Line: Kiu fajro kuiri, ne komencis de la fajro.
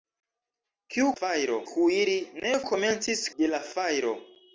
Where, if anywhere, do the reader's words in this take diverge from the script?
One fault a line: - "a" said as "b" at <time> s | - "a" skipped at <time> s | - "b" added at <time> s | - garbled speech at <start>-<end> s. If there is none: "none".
none